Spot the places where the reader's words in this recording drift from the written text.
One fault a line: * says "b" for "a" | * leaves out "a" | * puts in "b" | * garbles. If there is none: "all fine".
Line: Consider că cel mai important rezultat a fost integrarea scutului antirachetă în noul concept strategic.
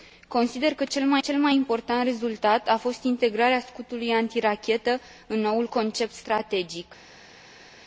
* puts in "cel mai"